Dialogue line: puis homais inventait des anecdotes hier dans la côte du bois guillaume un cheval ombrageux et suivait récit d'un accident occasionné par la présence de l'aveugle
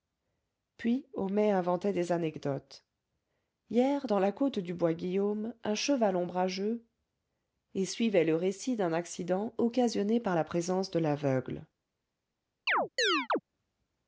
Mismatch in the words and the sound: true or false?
true